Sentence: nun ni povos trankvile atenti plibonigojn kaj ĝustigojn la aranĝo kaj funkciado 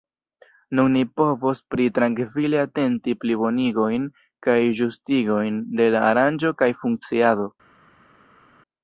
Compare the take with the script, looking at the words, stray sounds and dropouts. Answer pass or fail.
fail